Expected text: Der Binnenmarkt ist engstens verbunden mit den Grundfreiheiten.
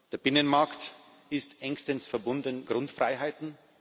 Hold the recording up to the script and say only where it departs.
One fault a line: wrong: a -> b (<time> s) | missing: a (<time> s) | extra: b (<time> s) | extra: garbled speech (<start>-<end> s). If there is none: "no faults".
missing: mit den (2.7 s)